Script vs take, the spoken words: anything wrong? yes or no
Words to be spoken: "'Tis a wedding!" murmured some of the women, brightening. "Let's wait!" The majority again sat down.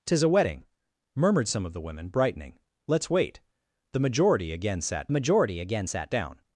yes